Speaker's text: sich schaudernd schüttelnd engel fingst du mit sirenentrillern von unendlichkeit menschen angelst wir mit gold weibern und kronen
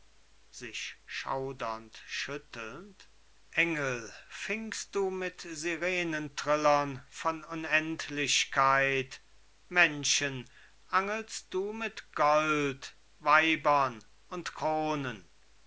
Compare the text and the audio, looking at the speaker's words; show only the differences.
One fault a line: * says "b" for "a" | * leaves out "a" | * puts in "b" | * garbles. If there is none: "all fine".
* says "du" for "wir"